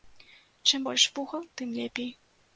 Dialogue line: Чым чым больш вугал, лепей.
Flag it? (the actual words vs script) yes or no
yes